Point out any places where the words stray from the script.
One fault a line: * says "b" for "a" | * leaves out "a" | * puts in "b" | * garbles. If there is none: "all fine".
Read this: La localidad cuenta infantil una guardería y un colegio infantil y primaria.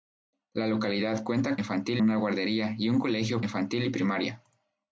all fine